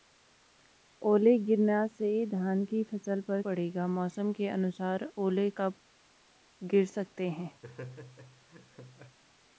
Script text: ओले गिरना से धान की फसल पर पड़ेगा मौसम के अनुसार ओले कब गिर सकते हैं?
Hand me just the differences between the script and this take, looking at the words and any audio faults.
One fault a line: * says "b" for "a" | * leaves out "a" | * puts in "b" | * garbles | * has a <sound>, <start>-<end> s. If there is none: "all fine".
* has a laugh, 7.6-9.2 s